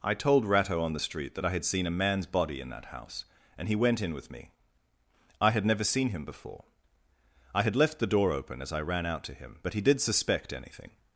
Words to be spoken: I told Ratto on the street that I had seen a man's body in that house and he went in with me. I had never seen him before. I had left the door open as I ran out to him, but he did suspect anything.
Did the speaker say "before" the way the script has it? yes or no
yes